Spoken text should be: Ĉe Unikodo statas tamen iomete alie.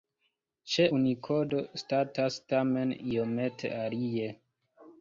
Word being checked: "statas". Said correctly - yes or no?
yes